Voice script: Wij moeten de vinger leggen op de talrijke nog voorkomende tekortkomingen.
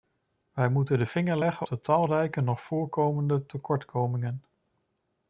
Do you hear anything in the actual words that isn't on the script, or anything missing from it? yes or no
yes